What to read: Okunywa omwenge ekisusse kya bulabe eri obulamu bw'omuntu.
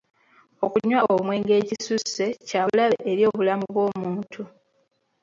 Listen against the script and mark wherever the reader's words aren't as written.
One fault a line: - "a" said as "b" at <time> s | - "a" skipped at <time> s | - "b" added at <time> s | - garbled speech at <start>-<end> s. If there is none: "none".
none